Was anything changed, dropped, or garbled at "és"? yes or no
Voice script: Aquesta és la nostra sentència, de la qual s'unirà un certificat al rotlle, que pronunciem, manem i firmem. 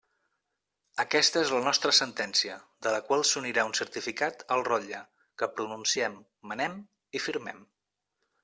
no